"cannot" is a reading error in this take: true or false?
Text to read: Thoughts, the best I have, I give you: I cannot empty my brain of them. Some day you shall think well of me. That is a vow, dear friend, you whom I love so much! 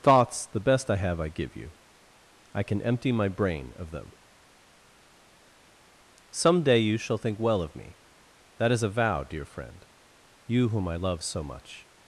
true